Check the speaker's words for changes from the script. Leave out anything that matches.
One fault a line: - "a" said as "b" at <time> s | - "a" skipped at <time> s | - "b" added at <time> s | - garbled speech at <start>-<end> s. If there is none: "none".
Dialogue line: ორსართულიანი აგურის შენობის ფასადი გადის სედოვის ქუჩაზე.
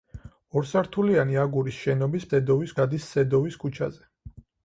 - "ფასადი" said as "სედოვის" at 2.3 s